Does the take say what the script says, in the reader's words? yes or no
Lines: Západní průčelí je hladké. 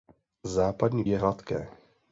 no